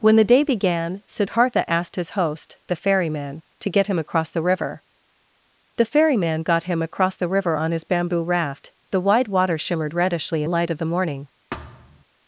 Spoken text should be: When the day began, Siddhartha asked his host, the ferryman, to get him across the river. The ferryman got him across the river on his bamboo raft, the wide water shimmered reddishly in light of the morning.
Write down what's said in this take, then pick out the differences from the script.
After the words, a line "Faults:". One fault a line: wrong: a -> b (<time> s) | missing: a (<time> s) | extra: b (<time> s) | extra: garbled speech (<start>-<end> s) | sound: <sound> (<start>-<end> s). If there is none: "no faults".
When the day began, Siddhartha asked his host, the ferryman, to get him across the river. The ferryman got him across the river on his bamboo raft, the wide water shimmered reddishly in light of the morning.
Faults:
sound: thud (11.5-12.0 s)